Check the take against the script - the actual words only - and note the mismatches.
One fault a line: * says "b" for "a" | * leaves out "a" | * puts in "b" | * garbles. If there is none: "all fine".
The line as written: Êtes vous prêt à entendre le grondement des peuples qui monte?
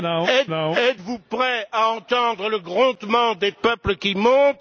* puts in "êtes"